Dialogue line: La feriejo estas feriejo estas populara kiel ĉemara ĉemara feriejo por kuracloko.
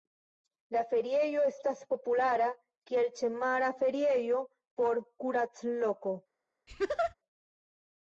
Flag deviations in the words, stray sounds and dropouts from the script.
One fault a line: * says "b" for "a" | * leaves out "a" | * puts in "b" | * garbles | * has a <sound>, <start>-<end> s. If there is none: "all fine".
* leaves out "feriejo estas"
* leaves out "ĉemara"
* has a laugh, 6.7-7.1 s